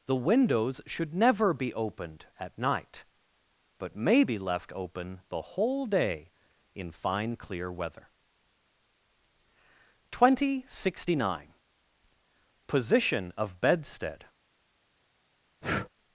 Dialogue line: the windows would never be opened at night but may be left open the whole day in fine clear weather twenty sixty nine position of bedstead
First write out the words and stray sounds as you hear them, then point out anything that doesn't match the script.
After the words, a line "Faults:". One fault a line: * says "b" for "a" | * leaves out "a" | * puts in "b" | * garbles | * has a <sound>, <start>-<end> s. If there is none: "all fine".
the windows should never be opened at night but may be left open the whole day in fine clear weather twenty sixty nine position of bedstead
Faults:
* says "should" for "would"
* has a breath, 15.6-15.9 s